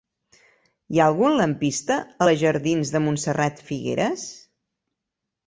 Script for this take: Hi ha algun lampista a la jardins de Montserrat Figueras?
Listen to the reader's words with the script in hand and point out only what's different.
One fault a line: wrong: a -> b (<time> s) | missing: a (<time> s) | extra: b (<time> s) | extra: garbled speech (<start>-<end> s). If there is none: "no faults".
no faults